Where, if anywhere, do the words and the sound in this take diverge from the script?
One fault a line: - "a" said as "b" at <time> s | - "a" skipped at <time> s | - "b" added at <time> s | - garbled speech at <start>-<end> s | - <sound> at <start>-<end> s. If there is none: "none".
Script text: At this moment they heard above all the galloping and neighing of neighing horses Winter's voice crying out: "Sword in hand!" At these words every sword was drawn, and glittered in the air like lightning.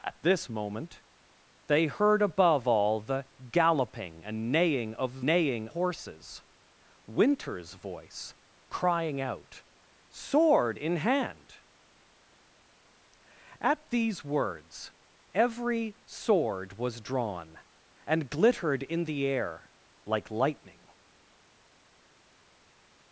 none